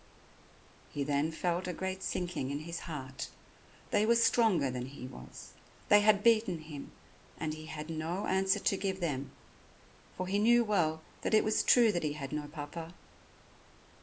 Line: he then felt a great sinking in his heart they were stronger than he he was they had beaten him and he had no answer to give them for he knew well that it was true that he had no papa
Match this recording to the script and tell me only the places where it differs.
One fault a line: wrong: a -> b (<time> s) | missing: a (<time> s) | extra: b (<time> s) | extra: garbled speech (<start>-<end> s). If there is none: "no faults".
missing: he (5.0 s)